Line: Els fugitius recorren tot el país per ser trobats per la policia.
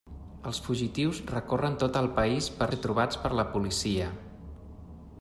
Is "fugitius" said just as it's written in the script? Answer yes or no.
yes